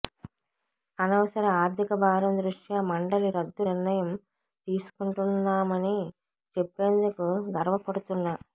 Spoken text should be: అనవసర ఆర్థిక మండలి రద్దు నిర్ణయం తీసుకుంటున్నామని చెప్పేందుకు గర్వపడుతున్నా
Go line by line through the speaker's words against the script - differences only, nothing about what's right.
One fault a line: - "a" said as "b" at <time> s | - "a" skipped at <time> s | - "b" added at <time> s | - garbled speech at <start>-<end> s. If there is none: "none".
- "భారం దృష్ట్యా" added at 2.0 s